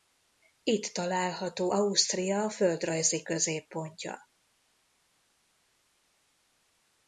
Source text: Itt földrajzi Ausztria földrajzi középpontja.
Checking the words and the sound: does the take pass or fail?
fail